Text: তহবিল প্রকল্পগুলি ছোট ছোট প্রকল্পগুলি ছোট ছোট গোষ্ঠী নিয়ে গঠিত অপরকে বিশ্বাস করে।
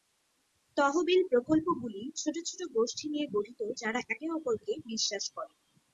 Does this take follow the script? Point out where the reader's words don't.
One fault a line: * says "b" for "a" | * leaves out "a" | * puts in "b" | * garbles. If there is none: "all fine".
* leaves out "প্রকল্পগুলি ছোট ছোট"
* puts in "যারা একে"